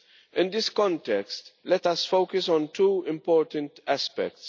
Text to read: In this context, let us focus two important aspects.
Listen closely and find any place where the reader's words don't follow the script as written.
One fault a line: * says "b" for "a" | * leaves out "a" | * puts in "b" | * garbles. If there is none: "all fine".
* puts in "on"